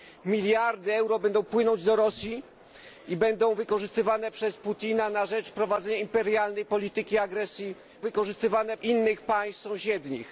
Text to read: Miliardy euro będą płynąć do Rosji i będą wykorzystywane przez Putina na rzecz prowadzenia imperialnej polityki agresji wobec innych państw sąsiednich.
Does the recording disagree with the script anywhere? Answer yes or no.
yes